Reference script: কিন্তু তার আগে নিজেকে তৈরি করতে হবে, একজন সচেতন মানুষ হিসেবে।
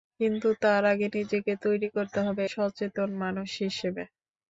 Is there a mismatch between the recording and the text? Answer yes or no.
yes